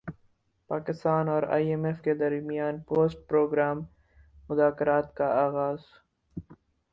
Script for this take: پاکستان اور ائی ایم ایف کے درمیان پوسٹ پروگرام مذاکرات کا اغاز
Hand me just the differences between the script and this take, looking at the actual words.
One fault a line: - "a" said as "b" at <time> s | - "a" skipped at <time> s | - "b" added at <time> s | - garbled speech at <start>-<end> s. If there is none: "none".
none